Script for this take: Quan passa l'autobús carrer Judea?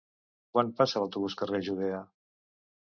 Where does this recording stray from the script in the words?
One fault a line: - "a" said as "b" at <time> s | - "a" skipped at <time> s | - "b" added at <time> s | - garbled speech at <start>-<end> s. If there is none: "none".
none